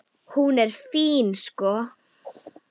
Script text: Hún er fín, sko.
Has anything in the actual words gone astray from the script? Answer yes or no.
no